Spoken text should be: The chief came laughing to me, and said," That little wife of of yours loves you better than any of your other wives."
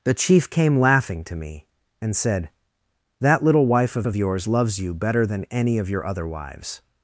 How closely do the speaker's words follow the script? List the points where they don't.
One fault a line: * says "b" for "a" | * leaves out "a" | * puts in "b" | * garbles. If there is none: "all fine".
all fine